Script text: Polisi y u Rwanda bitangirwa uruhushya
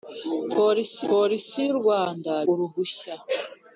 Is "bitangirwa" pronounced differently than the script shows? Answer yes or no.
yes